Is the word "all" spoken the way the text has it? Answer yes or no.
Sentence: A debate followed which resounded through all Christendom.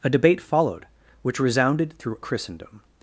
no